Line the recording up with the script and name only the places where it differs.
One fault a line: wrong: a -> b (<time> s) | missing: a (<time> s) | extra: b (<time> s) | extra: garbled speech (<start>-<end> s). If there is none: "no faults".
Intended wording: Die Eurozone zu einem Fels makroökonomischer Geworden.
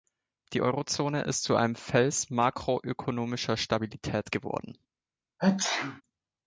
extra: ist (1.2 s)
extra: Stabilität (3.6 s)